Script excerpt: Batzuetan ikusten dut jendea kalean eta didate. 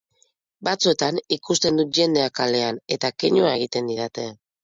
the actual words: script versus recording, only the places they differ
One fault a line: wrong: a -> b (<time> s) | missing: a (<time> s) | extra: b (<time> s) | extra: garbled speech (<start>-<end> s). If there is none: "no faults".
extra: keinua egiten (3.2 s)